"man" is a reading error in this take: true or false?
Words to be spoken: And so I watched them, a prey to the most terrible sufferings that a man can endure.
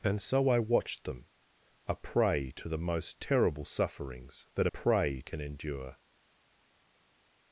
true